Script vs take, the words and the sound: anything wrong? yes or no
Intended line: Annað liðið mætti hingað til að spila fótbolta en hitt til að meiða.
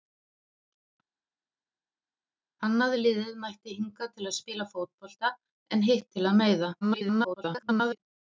yes